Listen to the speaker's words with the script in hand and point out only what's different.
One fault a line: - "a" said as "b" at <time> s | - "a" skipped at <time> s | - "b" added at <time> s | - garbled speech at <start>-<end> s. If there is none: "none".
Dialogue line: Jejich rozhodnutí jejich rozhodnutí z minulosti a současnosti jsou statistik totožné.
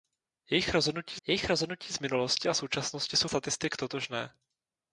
none